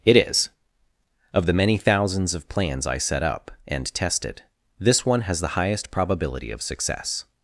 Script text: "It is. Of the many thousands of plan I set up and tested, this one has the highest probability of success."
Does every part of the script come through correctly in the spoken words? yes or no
no